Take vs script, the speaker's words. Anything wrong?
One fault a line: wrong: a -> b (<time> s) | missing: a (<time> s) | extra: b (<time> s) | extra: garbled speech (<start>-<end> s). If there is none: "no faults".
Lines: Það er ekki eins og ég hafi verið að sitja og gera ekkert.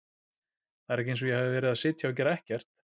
no faults